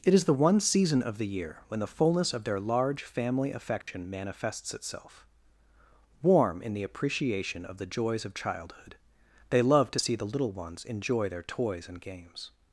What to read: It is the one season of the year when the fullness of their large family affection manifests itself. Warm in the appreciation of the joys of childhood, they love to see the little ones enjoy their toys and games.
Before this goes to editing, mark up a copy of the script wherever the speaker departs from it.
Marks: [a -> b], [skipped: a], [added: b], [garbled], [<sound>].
It is the one season of the year when the fullness of their large family affection [dropout] manifests itself. Warm in the appreciation of the joys of childhood, they love to see the little ones enjoy their toys and games.